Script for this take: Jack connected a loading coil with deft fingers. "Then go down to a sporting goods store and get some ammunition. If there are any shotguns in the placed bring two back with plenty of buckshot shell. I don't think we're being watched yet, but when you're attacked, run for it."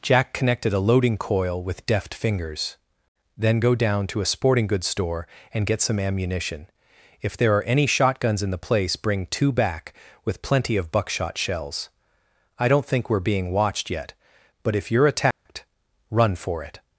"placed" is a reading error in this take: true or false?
true